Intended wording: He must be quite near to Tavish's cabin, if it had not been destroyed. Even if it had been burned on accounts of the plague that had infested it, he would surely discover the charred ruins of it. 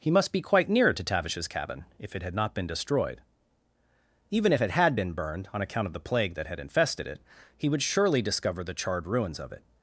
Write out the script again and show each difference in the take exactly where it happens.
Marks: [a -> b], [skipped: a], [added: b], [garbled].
He must be quite near to Tavish's cabin, if it had not been destroyed. Even if it had been burned on [accounts -> account] of the plague that had infested it, he would surely discover the charred ruins of it.